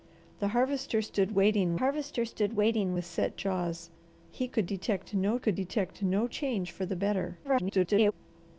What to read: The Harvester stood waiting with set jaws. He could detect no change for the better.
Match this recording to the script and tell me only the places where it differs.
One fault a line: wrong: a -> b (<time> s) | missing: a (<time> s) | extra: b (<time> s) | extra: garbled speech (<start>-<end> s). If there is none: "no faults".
extra: Harvester stood waiting (1.7 s)
extra: could detect no (5.4 s)
extra: garbled speech (7.4-8.1 s)